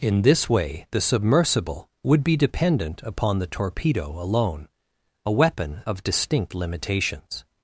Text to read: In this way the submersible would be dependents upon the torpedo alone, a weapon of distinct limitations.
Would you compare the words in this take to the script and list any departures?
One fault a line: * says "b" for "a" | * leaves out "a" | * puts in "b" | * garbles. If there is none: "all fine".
* says "dependent" for "dependents"